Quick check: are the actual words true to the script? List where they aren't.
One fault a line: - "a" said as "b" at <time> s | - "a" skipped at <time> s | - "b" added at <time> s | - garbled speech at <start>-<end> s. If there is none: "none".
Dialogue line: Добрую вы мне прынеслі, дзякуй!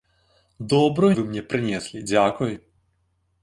none